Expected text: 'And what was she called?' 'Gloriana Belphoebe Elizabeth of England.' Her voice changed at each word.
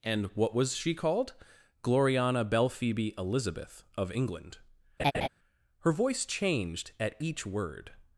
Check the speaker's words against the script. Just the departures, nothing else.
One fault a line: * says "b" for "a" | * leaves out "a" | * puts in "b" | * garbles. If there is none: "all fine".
all fine